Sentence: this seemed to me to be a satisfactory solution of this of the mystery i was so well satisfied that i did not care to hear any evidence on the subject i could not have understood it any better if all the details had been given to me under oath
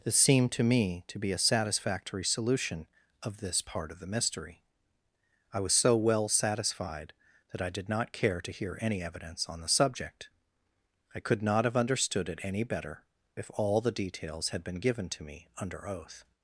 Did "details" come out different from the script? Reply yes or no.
no